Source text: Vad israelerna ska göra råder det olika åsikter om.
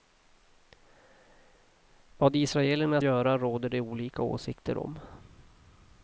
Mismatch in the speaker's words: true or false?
true